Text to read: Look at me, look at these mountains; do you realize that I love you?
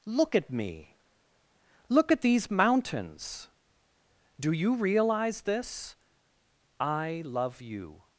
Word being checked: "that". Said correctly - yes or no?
no